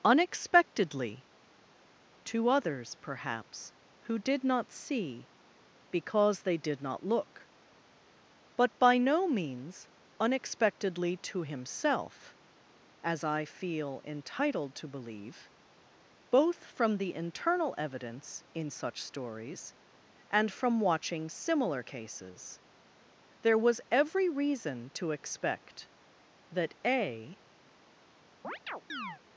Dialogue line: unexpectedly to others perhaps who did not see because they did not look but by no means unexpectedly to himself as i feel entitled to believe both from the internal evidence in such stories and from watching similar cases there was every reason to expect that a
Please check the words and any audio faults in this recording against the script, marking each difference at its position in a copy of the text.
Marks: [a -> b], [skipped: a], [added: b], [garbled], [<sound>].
unexpectedly to others perhaps who did not see because they did not look but by no means unexpectedly to himself as i feel entitled to believe both from the internal evidence in such stories and from watching similar cases there was every reason to expect that a [chirp]